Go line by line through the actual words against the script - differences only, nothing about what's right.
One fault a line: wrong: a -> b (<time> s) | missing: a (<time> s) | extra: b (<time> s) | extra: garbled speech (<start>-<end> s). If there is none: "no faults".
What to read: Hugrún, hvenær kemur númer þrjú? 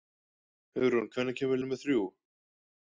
no faults